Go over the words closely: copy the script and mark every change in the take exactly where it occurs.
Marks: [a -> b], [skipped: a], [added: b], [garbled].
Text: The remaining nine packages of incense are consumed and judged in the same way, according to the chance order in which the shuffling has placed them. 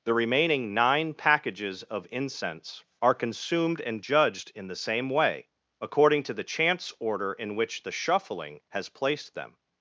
The remaining nine packages of incense are consumed and judged in the same way, according to the chance order in which the shuffling has placed them.